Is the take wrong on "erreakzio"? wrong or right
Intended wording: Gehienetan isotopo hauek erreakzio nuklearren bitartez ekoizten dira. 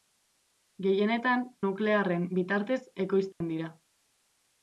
wrong